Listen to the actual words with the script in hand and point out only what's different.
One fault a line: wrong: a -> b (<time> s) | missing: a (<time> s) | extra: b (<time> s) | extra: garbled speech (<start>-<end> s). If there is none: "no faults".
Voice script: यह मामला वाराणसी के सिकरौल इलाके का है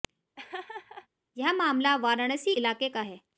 missing: के सिकरौल (2.5 s)